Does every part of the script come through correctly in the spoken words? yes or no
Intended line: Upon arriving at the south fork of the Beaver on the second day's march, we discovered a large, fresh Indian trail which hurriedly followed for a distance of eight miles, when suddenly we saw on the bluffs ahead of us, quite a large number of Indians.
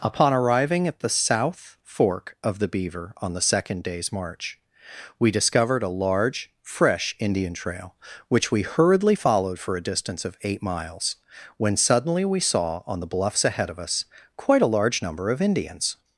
no